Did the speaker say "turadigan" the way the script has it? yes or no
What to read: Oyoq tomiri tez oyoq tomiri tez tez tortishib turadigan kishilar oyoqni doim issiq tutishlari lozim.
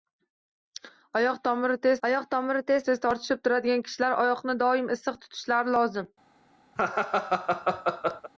yes